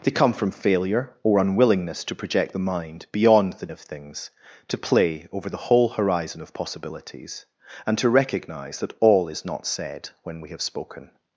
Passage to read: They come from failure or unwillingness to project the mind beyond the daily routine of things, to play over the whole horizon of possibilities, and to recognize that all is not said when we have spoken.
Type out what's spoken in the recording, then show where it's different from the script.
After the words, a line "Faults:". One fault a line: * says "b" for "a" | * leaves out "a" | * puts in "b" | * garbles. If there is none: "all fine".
They come from failure or unwillingness to project the mind beyond the of things, to play over the whole horizon of possibilities, and to recognize that all is not said when we have spoken.
Faults:
* leaves out "daily routine"